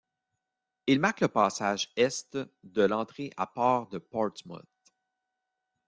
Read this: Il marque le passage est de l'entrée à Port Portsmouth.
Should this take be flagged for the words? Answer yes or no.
yes